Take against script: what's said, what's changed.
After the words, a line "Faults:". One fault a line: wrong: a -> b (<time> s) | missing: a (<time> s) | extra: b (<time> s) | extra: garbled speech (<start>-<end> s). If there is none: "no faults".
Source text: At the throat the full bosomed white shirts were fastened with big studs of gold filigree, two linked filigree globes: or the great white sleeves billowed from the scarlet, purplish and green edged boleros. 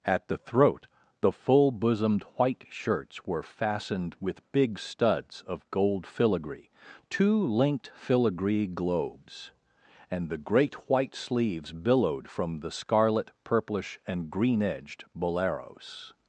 At the throat the full bosomed white shirts were fastened with big studs of gold filigree, two linked filigree globes: and the great white sleeves billowed from the scarlet, purplish and green edged boleros.
Faults:
wrong: or -> and (10.1 s)